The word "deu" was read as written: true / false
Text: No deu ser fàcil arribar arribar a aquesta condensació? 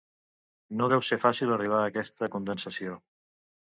true